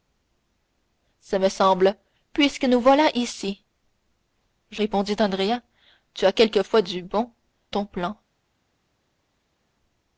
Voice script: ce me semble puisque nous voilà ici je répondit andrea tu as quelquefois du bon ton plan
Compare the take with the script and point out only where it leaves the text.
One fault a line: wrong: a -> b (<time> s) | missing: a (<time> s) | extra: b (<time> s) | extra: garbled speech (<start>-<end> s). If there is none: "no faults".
no faults